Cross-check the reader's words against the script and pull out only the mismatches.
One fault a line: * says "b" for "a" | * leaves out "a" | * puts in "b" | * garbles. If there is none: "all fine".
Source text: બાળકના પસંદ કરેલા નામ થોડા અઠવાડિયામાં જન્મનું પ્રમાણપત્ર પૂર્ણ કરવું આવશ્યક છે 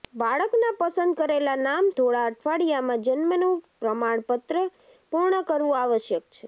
all fine